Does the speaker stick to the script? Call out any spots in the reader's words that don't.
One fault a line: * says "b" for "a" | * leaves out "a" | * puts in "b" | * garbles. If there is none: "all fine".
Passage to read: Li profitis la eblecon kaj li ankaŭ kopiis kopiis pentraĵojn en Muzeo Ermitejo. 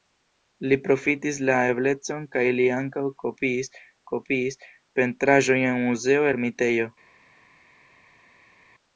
all fine